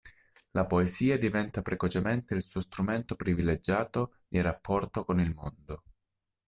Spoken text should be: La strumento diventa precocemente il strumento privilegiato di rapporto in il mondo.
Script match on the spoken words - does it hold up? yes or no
no